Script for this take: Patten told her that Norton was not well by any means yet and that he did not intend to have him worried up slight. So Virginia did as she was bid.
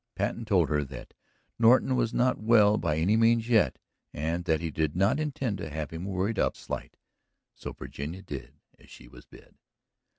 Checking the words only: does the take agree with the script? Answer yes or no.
yes